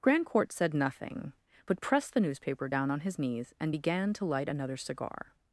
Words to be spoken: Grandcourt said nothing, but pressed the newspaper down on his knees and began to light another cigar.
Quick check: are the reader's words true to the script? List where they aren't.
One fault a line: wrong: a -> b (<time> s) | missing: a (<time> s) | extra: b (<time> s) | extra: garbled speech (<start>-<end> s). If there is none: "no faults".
no faults